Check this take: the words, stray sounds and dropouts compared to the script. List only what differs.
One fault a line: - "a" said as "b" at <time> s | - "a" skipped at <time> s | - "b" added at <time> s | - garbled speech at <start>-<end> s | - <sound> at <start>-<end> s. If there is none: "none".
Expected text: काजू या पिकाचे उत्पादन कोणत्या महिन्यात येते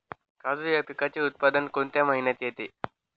none